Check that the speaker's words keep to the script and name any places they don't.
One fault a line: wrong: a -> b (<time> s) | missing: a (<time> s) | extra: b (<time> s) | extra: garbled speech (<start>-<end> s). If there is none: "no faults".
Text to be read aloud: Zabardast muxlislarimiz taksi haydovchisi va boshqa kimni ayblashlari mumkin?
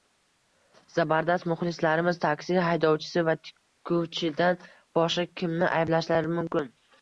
extra: tikuvchidan (3.5 s)